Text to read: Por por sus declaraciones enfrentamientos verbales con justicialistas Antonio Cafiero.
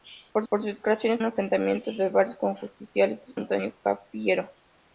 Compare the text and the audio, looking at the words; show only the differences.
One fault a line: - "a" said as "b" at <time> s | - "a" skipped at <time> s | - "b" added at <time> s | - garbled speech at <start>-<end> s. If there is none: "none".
none